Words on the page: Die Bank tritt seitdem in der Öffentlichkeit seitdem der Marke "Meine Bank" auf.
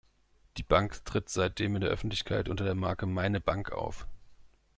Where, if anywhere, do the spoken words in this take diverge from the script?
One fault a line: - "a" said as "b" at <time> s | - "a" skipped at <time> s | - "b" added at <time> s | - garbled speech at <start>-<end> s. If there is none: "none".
- "seitdem" said as "unter" at 2.5 s